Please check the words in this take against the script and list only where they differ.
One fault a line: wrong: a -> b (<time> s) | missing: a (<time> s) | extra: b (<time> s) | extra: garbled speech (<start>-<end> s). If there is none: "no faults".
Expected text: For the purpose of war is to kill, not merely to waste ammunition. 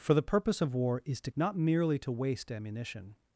missing: kill (1.3 s)